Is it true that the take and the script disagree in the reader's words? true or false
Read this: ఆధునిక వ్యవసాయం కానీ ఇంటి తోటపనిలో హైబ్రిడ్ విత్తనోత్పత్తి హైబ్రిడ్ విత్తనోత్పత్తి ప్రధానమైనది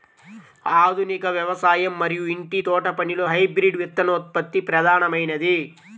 true